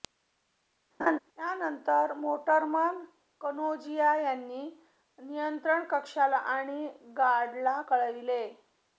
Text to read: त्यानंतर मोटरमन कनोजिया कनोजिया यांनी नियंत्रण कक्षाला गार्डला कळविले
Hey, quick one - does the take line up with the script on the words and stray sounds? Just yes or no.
no